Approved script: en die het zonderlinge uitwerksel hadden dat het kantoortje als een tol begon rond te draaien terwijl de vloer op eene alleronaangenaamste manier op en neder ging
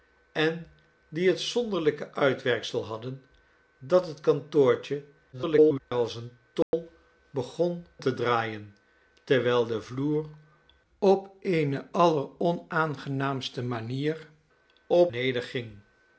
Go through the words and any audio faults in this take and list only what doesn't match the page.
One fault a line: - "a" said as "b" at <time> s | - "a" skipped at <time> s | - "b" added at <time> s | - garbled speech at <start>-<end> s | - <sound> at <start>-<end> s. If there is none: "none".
- garbled speech at 5.3-5.8 s
- dropout at 6.6-6.7 s
- "rond" skipped at 7.9 s
- "en" skipped at 15.1 s